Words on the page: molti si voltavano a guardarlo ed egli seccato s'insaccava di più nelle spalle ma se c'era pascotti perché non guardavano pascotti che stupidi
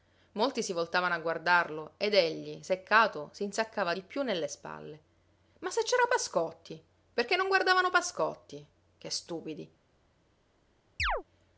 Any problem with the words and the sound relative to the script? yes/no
yes